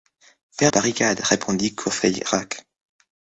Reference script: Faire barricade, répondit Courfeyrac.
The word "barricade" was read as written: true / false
true